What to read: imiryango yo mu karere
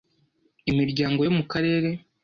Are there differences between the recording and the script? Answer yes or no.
no